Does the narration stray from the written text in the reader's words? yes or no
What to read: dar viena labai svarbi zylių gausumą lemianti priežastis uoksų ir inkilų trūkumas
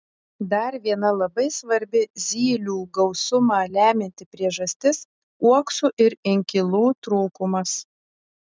no